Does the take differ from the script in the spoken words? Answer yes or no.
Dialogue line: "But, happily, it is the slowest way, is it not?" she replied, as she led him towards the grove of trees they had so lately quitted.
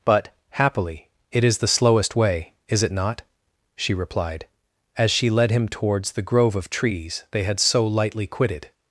yes